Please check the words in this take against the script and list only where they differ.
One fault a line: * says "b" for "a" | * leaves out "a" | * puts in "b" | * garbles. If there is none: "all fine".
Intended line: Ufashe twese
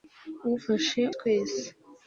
all fine